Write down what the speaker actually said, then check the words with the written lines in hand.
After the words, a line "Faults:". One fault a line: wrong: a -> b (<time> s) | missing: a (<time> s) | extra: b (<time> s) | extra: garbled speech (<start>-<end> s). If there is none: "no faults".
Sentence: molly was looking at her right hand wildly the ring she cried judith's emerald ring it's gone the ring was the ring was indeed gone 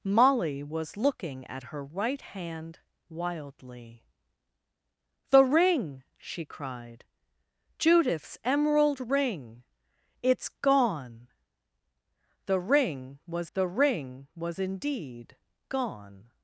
molly was looking at her right hand wildly the ring she cried judith's emerald ring it's gone the ring was the ring was indeed gone
Faults:
no faults